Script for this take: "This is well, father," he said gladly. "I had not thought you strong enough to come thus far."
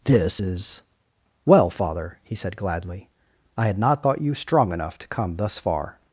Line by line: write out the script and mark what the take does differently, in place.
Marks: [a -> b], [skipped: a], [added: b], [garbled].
"This is well, father," he said gladly. "I had not thought you strong enough to come thus far."